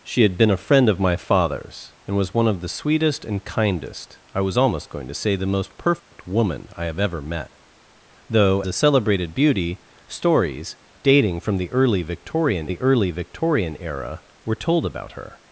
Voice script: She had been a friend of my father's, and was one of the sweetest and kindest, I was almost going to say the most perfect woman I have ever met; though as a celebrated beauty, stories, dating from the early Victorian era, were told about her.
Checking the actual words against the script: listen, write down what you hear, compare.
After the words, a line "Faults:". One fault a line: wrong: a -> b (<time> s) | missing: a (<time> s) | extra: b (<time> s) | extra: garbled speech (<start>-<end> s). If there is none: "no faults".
She had been a friend of my father's, and was one of the sweetest and kindest, I was almost going to say the most perfect woman I have ever met; though a celebrated beauty, stories, dating from the early Victorian the early Victorian era, were told about her.
Faults:
missing: as (8.6 s)
extra: the early Victorian (12.6 s)